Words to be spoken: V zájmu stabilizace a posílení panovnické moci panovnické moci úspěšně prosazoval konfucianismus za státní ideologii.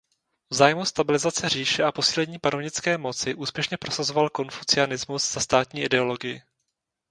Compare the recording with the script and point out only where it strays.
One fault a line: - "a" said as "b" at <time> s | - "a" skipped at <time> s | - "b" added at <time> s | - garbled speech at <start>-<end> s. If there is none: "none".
- "říše" added at 1.5 s
- "panovnické moci" skipped at 3.3 s